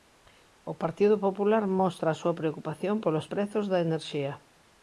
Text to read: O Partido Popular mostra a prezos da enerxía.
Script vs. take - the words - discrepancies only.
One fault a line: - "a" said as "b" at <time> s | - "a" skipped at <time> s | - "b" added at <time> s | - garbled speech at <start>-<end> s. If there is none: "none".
- "súa preocupación polos" added at 2.2 s